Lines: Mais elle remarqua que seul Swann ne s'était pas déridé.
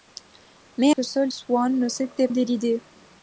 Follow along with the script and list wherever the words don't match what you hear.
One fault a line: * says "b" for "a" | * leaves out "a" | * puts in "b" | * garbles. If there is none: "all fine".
* leaves out "elle remarqua"
* leaves out "pas"